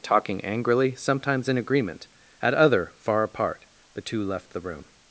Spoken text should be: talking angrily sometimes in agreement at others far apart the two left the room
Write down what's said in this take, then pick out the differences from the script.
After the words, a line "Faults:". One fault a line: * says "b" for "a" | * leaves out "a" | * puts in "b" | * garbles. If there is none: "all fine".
talking angrily sometimes in agreement at other far apart the two left the room
Faults:
* says "other" for "others"